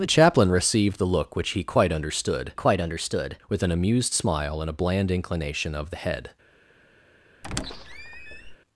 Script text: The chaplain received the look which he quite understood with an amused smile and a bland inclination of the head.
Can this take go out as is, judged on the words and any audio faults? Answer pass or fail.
fail